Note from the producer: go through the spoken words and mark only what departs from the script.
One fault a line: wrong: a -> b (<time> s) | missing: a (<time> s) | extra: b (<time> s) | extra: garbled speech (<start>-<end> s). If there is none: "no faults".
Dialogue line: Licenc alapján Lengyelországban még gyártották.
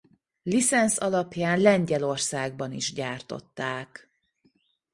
wrong: még -> is (2.7 s)